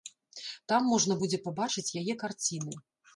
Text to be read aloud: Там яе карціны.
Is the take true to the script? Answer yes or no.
no